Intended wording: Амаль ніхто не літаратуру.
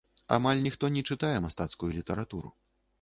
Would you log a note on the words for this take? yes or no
yes